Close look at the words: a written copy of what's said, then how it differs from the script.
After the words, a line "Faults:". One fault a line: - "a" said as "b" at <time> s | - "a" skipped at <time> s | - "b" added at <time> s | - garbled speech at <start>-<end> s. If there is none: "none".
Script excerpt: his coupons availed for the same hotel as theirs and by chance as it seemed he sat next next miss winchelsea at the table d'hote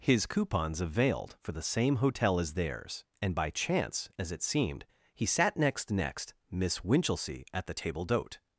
his coupons availed for the same hotel as theirs and by chance as it seemed he sat next next miss winchelsea at the table d'hote
Faults:
none